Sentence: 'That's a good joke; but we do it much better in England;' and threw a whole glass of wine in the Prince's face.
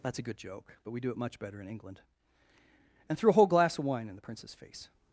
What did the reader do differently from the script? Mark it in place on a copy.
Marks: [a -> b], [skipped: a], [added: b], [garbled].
'That's a good joke; but we do it much better in England;' and threw a whole glass of wine in the Prince's face.